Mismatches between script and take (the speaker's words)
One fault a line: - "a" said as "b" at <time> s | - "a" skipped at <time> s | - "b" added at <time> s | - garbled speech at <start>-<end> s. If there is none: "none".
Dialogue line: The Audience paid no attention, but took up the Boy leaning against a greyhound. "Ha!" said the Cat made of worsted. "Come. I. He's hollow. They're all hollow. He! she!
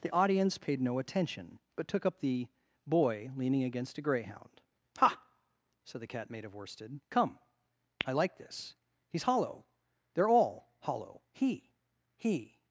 - "like this" added at 8.1 s
- "she" said as "he" at 12.2 s